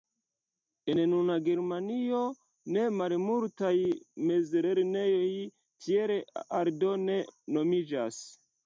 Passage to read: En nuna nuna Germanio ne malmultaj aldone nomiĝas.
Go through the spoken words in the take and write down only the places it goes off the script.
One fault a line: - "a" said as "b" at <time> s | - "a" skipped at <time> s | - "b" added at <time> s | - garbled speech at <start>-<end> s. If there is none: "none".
- "nuna" skipped at 1.4 s
- "mezlernejoj tiel" added at 4.3 s